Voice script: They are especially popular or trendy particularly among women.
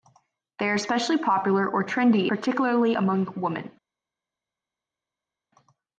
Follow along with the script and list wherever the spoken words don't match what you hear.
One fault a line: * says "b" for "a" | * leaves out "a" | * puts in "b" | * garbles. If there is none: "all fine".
all fine